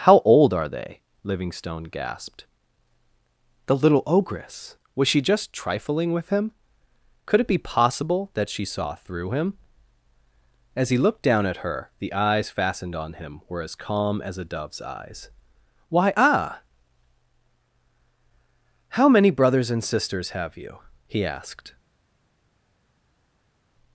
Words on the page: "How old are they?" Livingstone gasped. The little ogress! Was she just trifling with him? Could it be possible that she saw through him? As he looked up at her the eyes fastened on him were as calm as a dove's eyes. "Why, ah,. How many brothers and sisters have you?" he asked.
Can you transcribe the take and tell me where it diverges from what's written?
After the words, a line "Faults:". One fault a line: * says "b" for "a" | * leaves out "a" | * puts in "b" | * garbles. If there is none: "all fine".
"How old are they?" Livingstone gasped. The little ogress! Was she just trifling with him? Could it be possible that she saw through him? As he looked down at her the eyes fastened on him were as calm as a dove's eyes. "Why, ah,. How many brothers and sisters have you?" he asked.
Faults:
* says "down" for "up"